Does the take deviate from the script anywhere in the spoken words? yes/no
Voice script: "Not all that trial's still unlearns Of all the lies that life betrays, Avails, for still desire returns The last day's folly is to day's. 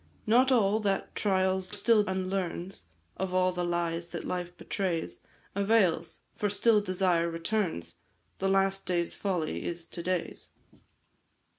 no